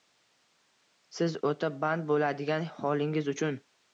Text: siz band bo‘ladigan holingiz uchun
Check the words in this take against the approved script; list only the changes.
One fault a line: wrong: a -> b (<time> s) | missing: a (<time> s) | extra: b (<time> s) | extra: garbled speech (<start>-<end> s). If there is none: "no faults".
extra: o‘ta (1.5 s)